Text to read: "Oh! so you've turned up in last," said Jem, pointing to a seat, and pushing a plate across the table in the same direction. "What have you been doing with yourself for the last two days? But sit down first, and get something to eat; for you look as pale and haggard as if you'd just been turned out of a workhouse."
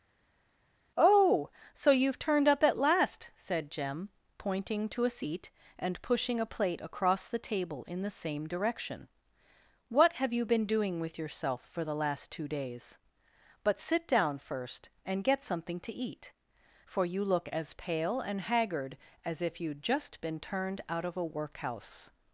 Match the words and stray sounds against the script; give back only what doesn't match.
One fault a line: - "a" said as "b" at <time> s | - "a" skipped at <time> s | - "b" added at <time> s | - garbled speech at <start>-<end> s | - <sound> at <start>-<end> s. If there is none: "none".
- "in" said as "at" at 2.6 s